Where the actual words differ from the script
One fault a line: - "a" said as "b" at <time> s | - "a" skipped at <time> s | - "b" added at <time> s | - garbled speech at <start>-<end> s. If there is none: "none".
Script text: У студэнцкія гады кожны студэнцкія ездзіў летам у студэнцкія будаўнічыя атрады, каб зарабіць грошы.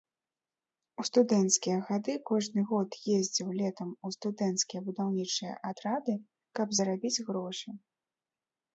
- "студэнцкія" said as "год" at 2.7 s